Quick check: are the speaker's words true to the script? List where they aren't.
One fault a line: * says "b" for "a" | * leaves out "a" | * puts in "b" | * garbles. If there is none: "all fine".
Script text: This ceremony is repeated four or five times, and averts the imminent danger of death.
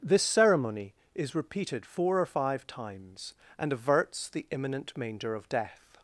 * says "manger" for "danger"